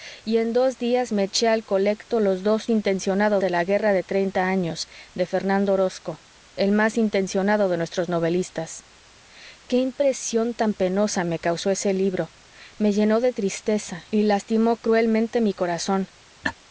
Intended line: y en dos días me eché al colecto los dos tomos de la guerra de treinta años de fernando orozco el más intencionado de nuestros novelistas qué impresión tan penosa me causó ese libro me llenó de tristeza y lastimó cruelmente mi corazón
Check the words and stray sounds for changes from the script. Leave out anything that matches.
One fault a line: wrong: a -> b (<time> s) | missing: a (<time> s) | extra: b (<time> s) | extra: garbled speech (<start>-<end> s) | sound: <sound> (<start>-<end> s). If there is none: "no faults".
wrong: tomos -> intencionado (2.7 s)
sound: laugh (16.4-16.5 s)